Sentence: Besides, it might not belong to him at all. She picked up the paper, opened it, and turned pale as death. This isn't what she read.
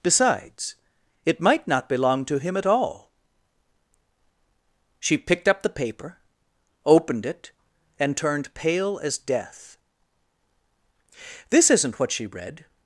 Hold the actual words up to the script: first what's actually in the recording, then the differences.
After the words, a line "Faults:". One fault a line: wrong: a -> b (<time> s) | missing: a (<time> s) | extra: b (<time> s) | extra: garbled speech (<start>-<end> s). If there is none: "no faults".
Besides, it might not belong to him at all. She picked up the paper, opened it, and turned pale as death. This isn't what she read.
Faults:
no faults